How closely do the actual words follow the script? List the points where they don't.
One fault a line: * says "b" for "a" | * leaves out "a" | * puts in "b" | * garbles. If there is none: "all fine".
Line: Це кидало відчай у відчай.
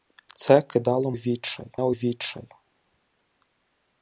all fine